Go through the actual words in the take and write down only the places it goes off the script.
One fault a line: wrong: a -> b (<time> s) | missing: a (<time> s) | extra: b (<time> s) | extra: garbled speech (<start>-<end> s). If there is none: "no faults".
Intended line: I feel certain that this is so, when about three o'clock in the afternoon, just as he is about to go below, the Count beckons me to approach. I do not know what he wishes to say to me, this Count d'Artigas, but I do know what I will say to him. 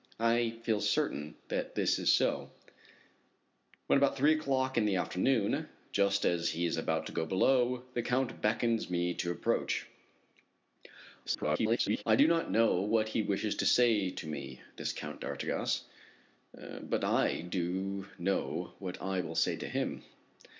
extra: garbled speech (11.3-12.0 s)